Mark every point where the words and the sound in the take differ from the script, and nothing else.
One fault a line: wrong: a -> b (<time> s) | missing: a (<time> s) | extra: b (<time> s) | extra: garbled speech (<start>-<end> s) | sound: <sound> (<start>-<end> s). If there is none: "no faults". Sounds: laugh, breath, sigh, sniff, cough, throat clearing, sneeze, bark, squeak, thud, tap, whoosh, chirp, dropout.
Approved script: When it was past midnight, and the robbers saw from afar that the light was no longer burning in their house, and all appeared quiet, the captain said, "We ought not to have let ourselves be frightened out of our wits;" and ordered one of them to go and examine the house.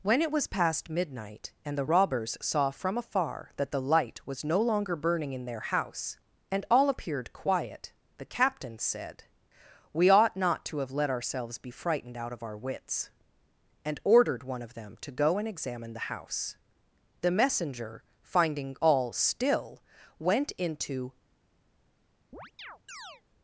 extra: The messenger finding all still went into (17.2 s)
sound: chirp (22.3-23.2 s)